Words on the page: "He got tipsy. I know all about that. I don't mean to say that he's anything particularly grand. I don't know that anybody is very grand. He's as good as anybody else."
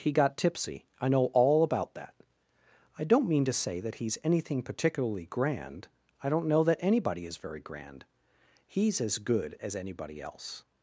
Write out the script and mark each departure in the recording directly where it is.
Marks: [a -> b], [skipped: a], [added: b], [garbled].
"He got tipsy. I know all about that. I don't mean to say that he's anything particularly grand. I don't know that anybody is very grand. He's as good as anybody else."